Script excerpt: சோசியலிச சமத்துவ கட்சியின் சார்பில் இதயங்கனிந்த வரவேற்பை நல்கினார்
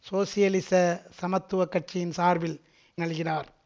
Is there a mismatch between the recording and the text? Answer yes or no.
yes